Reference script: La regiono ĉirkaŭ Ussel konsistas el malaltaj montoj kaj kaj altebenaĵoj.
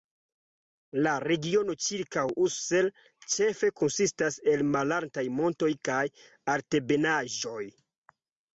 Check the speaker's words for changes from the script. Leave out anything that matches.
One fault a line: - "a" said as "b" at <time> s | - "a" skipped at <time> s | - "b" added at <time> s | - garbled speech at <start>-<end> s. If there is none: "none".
- "ĉefe" added at 3.4 s
- "kaj" skipped at 6.0 s